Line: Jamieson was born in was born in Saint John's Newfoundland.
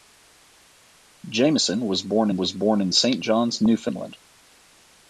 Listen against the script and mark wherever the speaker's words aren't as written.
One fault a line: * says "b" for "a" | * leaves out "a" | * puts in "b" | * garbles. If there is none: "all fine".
all fine